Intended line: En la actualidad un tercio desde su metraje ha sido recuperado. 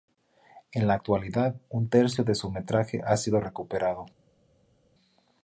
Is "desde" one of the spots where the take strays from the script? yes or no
yes